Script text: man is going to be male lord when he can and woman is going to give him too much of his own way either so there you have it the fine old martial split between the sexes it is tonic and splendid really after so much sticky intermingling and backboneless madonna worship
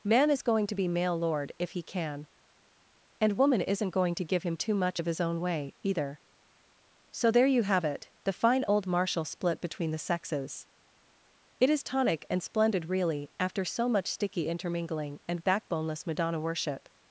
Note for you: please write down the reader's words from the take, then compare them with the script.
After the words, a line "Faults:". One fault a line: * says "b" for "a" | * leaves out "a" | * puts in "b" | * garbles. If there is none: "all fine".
man is going to be male lord if he can and woman isn't going to give him too much of his own way either so there you have it the fine old martial split between the sexes it is tonic and splendid really after so much sticky intermingling and backboneless madonna worship
Faults:
* says "if" for "when"
* says "isn't" for "is"